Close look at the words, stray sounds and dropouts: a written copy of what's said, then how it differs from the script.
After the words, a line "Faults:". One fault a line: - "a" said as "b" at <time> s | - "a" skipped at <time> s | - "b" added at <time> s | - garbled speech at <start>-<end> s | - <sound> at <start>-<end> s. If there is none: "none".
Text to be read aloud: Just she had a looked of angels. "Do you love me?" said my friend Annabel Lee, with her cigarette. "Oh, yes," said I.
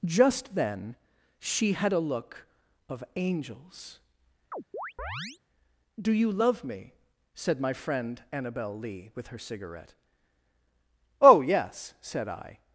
Just then she had a look of angels. "Do you love me?" said my friend Annabel Lee, with her cigarette. "Oh, yes," said I.
Faults:
- "then" added at 0.6 s
- "looked" said as "look" at 2.0 s
- chirp at 4.5-5.4 s